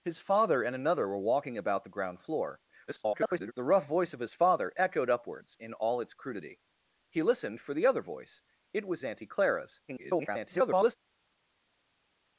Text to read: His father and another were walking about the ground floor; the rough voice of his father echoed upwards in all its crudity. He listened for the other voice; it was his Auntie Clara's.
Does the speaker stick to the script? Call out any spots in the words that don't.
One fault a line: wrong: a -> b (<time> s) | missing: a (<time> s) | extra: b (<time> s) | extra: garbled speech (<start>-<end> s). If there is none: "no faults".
extra: garbled speech (2.9-3.5 s)
missing: his (9.0 s)
extra: garbled speech (9.9-11.0 s)